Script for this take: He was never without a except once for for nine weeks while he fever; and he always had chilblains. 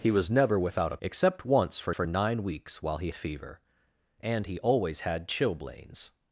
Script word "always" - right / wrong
right